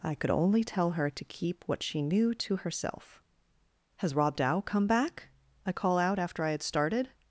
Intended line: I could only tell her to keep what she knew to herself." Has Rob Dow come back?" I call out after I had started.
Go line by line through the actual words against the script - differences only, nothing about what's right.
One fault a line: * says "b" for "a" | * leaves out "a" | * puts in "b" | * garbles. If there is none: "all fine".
all fine